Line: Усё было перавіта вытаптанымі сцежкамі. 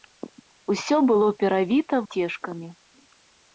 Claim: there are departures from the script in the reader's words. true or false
true